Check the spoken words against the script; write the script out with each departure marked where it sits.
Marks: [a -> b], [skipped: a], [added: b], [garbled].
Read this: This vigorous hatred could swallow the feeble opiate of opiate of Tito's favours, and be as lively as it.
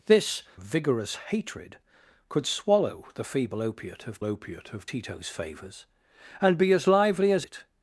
This vigorous hatred could swallow the feeble opiate of opiate of Tito's favours, and be as lively as it.